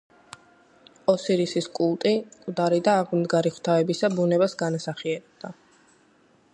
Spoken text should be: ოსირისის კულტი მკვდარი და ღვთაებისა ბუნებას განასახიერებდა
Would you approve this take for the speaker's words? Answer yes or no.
no